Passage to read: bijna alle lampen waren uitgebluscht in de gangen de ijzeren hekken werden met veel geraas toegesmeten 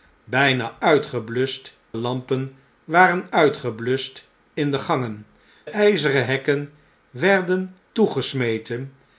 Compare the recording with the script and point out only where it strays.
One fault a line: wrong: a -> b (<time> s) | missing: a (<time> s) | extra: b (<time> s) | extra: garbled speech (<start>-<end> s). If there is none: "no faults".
wrong: alle -> uitgebluscht (0.8 s)
missing: de (5.3 s)
missing: met veel geraas (7.8 s)